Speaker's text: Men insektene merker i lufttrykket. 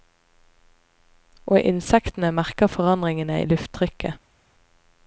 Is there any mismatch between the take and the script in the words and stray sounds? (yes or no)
yes